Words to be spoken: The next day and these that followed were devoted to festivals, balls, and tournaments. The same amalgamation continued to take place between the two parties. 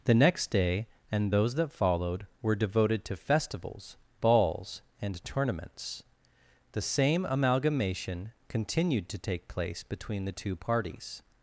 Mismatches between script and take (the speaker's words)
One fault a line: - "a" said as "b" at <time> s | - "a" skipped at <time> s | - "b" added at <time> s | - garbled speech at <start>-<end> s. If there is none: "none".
- "these" said as "those" at 1.3 s